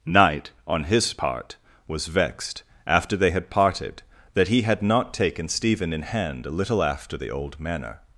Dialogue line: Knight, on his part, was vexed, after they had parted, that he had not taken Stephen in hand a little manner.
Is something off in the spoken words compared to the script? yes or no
yes